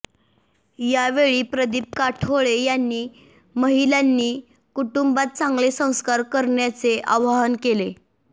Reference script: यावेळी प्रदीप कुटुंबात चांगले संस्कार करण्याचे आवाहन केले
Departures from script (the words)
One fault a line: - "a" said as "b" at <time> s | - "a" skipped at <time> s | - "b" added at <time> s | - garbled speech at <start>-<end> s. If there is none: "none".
- "काठोळे यांनी महिलांनी" added at 2.0 s